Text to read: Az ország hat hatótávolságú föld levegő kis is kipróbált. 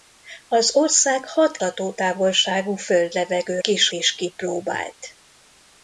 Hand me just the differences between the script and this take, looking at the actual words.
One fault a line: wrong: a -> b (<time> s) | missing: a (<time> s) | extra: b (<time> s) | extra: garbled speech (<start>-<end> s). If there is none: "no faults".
no faults